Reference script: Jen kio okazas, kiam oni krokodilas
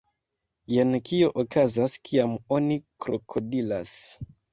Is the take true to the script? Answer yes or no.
yes